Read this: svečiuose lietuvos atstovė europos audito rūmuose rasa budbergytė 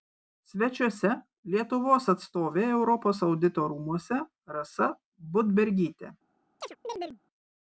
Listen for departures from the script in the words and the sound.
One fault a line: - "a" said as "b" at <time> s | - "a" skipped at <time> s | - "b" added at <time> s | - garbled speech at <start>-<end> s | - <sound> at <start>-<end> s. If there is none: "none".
- chirp at 6.6-7.2 s